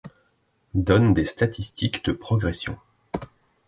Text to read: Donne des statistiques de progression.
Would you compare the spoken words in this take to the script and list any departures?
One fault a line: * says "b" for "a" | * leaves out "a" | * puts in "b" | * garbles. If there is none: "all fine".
all fine